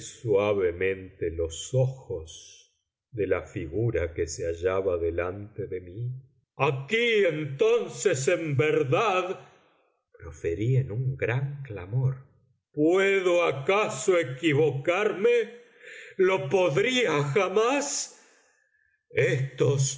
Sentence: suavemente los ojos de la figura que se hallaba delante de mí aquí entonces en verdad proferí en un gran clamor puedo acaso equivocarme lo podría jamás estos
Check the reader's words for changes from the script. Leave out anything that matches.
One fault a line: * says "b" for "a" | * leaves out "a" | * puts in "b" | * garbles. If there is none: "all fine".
all fine